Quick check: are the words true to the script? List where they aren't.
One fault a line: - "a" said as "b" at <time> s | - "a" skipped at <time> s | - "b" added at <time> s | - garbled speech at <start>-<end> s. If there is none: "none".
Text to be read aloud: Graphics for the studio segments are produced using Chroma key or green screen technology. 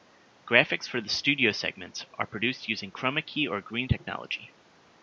- "screen" skipped at 3.9 s